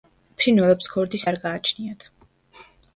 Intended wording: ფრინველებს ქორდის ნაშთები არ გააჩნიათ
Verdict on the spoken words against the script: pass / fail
fail